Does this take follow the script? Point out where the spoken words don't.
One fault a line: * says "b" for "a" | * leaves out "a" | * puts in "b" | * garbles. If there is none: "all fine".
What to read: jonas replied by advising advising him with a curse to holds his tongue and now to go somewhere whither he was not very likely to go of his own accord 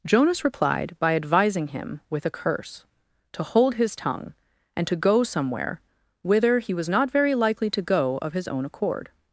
* leaves out "advising"
* says "hold" for "holds"
* leaves out "now"